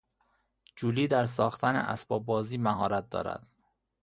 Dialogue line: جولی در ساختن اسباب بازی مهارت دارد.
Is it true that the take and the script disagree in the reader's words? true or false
false